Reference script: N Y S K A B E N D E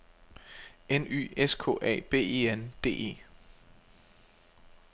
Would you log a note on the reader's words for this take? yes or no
no